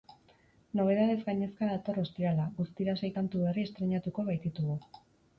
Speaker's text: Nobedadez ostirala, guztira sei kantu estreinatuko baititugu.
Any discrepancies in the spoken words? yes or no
yes